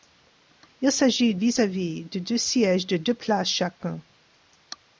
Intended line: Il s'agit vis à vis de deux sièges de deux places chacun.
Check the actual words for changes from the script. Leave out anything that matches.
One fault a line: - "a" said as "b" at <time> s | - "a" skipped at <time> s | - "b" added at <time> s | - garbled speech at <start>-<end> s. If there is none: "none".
none